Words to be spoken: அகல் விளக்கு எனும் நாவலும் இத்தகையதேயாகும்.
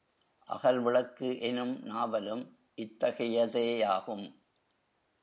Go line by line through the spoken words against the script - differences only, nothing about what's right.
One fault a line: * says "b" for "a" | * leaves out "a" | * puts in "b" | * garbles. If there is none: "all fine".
all fine